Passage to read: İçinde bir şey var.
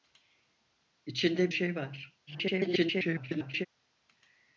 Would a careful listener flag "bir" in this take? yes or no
yes